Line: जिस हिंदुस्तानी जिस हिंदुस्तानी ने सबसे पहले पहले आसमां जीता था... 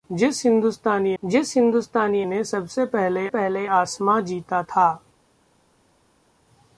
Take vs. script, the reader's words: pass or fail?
pass